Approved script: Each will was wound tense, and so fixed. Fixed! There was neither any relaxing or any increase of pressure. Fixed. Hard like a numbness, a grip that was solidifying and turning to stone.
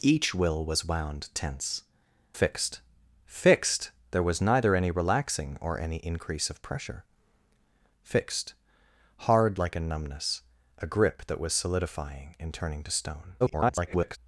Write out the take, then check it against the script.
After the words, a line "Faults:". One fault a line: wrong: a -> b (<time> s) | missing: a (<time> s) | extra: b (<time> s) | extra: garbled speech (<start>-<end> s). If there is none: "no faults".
Each will was wound tense, fixed. Fixed! There was neither any relaxing or any increase of pressure. Fixed. Hard like a numbness, a grip that was solidifying and turning to stone. [garbled]
Faults:
missing: and so (1.8 s)
extra: garbled speech (13.4-14.2 s)